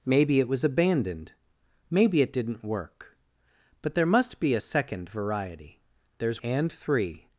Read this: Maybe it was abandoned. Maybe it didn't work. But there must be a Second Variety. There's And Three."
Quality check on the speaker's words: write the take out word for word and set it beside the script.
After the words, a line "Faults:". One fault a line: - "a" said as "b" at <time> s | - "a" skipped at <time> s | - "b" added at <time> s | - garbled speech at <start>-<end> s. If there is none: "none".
Maybe it was abandoned. Maybe it didn't work. But there must be a Second Variety. There's And Three."
Faults:
none